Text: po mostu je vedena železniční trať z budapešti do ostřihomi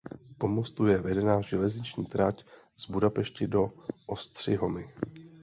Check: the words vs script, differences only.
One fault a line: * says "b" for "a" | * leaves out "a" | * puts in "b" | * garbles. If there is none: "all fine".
all fine